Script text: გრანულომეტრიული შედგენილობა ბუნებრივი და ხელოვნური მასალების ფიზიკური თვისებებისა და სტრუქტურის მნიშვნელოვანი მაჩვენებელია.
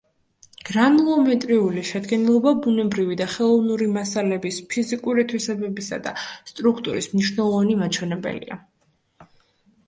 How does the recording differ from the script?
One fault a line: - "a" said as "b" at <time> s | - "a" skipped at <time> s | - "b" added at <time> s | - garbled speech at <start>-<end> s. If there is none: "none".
none